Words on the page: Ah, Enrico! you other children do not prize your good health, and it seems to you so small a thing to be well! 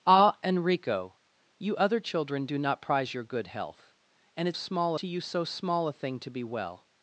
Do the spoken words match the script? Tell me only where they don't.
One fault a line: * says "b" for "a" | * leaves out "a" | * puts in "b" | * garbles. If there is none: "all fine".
* says "small" for "seems"